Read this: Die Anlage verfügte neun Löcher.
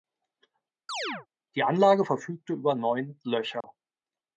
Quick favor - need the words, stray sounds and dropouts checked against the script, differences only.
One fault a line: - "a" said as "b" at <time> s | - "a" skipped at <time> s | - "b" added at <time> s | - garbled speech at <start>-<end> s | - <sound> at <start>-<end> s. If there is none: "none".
- chirp at 0.9-1.3 s
- "über" added at 2.5 s
- dropout at 3.6-3.6 s